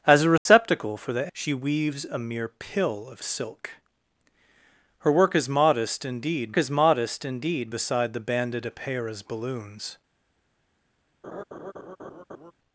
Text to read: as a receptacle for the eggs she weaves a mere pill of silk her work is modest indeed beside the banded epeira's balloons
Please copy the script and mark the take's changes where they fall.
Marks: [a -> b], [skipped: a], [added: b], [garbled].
as a receptacle for the [skipped: eggs] she weaves a mere pill of silk her work is modest indeed [added: is modest indeed] beside the banded epeira's balloons